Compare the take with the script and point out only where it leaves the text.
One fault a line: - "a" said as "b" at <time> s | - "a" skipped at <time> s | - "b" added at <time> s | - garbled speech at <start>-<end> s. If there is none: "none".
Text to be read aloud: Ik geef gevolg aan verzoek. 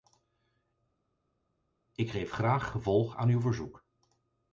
- "graag" added at 2.3 s
- "uw" added at 3.3 s